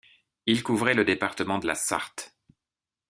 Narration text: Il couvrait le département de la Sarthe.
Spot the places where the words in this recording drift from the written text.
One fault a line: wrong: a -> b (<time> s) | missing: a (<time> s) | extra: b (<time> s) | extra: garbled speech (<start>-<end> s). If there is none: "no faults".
no faults